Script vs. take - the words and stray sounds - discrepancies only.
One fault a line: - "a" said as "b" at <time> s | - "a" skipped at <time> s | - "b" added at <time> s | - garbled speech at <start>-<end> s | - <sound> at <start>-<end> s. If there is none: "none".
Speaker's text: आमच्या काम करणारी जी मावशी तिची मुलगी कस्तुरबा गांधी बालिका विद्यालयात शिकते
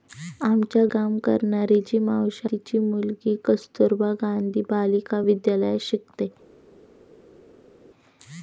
none